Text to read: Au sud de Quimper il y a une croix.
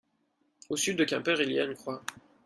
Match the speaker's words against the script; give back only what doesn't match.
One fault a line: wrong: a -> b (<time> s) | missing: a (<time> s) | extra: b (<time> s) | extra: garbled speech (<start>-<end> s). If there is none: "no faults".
no faults